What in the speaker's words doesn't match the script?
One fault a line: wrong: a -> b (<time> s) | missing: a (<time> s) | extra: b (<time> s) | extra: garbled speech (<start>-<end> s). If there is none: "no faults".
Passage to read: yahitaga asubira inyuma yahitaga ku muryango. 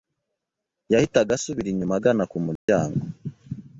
wrong: yahitaga -> agana (2.0 s)